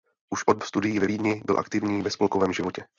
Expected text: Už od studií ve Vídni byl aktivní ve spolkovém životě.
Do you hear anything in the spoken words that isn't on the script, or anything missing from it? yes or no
no